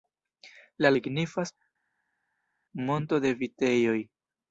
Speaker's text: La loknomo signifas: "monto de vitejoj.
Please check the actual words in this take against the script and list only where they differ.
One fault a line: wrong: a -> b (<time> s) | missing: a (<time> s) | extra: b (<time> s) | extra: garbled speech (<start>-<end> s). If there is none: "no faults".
missing: loknomo (0.9 s)